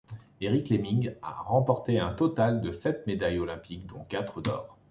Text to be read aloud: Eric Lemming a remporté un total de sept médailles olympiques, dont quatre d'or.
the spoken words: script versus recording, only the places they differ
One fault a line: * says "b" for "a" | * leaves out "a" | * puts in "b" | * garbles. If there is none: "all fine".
all fine